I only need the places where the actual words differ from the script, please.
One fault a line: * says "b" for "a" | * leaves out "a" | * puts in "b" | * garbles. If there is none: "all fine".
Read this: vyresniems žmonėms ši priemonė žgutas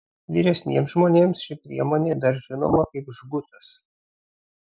* puts in "dar žinoma kaip"